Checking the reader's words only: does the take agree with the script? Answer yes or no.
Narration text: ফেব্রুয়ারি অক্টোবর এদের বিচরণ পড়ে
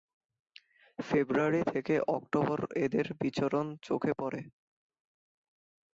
no